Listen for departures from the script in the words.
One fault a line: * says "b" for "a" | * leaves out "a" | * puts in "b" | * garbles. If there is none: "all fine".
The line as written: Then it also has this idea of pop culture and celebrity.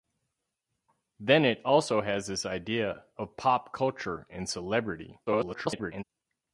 * garbles